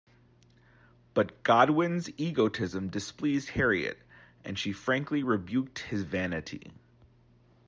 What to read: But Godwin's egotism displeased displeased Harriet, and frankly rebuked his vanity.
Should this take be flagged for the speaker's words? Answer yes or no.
yes